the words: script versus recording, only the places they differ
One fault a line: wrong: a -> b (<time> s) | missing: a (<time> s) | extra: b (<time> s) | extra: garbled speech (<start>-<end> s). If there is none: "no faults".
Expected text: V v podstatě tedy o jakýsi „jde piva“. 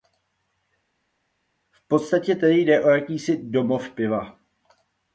missing: v (1.9 s)
extra: jde (2.6 s)
wrong: jde -> domov (3.4 s)